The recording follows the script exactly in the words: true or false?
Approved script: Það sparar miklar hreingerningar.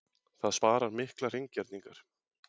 true